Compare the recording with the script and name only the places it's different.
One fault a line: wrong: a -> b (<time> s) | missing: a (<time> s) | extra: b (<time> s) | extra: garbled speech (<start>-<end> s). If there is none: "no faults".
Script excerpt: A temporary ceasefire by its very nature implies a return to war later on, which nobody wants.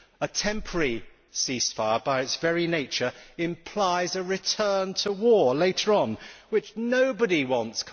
no faults